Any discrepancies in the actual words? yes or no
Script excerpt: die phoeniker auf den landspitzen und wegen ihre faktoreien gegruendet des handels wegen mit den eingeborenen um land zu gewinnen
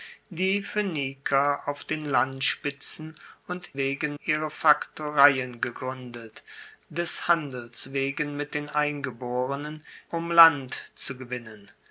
no